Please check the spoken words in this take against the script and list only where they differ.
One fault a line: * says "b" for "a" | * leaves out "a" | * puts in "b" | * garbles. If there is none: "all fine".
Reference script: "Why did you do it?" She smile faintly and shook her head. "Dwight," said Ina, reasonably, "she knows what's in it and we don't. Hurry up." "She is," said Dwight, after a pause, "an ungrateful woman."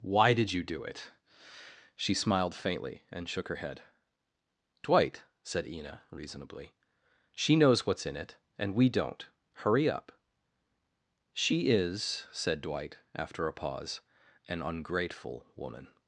* says "smiled" for "smile"